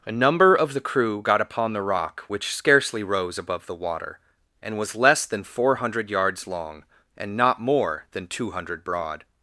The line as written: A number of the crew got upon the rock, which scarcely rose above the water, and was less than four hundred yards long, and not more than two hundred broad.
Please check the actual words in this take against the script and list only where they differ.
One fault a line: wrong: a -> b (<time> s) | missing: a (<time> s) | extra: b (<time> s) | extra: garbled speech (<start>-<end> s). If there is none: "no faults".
no faults